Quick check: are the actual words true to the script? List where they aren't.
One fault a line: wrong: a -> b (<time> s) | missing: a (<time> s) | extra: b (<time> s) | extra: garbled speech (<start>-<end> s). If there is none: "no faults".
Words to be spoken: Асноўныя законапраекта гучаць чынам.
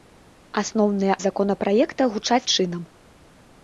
no faults